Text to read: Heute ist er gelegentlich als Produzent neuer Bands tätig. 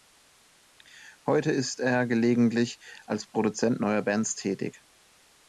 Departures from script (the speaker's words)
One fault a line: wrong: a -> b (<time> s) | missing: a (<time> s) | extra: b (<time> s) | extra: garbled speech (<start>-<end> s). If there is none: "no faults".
no faults